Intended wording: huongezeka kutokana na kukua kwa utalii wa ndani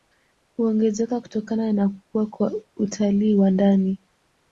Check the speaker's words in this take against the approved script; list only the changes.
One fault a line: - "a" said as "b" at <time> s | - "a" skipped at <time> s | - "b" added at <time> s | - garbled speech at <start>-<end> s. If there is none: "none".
none